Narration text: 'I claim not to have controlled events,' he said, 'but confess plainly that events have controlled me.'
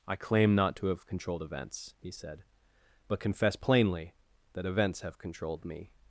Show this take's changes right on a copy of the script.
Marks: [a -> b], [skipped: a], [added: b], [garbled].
'I claim not to have controlled events,' he said, 'but confess plainly that events have controlled me.'